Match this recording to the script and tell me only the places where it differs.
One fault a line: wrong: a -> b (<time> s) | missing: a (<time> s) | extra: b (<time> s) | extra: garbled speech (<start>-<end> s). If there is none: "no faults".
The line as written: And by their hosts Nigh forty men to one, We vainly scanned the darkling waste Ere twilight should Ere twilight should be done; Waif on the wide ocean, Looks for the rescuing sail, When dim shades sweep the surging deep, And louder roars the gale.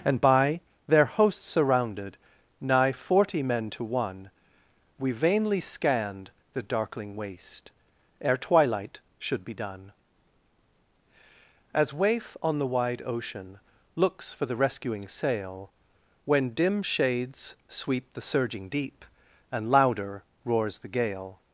extra: surrounded (1.5 s)
missing: Ere twilight should (9.4 s)
extra: As (11.7 s)